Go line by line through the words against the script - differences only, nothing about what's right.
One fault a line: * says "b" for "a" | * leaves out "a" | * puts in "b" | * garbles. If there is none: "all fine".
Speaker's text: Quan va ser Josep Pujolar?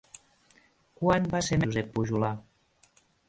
all fine